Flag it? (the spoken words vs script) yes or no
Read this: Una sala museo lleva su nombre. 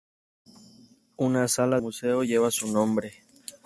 no